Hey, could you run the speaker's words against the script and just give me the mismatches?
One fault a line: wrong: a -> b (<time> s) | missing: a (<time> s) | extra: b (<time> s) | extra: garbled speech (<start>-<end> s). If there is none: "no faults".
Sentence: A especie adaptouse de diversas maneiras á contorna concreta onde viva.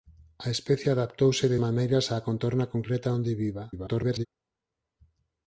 missing: diversas (1.6 s)
extra: garbled speech (3.7-4.3 s)